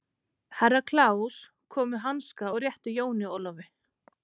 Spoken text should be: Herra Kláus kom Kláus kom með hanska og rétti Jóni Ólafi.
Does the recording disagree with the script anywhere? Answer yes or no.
yes